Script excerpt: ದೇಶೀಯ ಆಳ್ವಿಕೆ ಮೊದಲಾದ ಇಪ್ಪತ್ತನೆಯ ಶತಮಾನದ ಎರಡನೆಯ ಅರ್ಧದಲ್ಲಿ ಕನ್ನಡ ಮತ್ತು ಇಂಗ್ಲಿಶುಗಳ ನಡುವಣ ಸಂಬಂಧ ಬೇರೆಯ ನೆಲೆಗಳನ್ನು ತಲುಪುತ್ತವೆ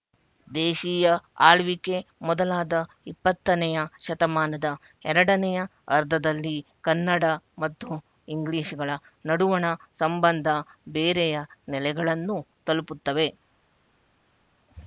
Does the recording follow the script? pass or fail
pass